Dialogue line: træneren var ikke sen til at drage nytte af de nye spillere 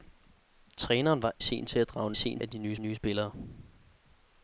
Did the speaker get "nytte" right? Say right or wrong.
wrong